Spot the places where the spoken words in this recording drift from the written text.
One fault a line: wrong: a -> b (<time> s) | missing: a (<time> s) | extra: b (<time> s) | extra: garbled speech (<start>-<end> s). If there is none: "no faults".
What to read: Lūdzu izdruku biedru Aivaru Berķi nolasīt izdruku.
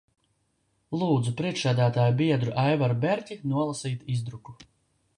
wrong: izdruku -> priekšsēdētāja (1.4 s)